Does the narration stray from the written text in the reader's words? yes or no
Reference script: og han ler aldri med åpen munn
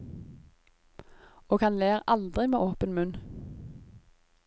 no